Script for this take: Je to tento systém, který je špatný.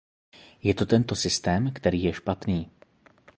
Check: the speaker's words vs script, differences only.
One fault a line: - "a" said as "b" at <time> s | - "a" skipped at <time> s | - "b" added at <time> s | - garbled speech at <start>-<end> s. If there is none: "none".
none